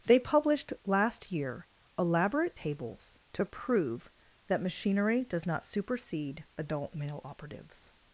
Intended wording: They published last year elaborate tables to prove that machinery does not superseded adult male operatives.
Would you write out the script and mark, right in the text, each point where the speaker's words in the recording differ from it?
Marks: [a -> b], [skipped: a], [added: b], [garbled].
They published last year elaborate tables to prove that machinery does not [superseded -> supersede] adult male operatives.